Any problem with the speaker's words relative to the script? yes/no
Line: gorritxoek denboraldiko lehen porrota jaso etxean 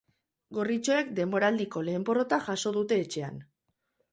yes